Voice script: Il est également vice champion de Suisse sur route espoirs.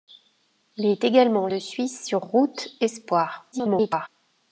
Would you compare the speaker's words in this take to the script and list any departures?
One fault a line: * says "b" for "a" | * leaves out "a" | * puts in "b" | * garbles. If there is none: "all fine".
* leaves out "vice champion"
* garbles